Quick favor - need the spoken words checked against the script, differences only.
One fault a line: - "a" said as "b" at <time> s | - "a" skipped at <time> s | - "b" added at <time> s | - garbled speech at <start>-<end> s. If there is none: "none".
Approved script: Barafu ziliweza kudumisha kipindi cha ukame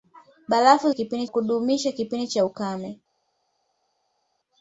- "ziliweza" said as "kipindi" at 0.9 s